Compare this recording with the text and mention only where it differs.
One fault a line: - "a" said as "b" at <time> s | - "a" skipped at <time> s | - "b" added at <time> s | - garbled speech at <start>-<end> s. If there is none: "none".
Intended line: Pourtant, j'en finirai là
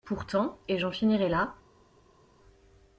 - "et" added at 0.7 s